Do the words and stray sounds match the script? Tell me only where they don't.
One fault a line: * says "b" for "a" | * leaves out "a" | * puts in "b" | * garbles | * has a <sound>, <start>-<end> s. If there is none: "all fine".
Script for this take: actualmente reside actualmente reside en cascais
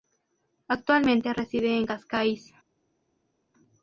* leaves out "actualmente reside"